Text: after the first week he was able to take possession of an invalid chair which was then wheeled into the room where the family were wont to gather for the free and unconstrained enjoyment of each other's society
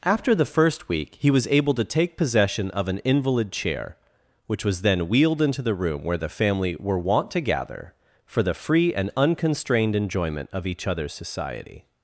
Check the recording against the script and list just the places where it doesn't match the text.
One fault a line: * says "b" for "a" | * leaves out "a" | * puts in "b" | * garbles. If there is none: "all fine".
all fine